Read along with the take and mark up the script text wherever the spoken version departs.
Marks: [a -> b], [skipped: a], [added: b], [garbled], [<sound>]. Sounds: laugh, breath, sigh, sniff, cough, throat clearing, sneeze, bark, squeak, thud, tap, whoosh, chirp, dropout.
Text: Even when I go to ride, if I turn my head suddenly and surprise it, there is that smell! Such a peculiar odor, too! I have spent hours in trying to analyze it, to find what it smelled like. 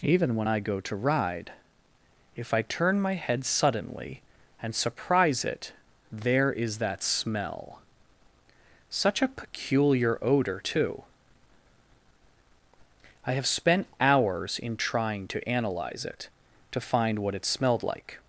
Even when I go to ride, if I turn my head suddenly and surprise it, there is that smell! Such a peculiar odor, too! I have spent hours in trying to analyze it, to find what it smelled like.